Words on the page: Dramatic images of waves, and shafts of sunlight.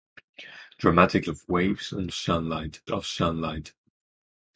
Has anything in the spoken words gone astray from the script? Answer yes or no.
yes